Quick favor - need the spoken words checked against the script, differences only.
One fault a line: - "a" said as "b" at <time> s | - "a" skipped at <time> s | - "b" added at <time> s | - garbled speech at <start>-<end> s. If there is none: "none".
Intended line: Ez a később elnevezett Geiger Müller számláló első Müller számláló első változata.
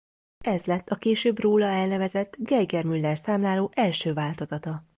- "lett" added at 0.7 s
- "róla" added at 1.4 s
- "Müller számláló első" skipped at 4.1 s